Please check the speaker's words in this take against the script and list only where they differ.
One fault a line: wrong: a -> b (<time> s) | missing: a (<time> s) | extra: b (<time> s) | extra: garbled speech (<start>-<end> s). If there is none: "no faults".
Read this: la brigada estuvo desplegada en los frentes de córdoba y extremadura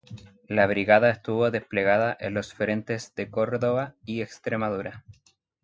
no faults